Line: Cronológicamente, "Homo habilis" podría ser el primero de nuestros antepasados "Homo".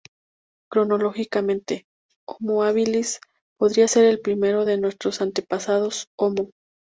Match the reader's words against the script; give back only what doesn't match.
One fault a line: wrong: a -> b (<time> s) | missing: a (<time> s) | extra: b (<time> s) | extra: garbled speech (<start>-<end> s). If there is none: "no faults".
no faults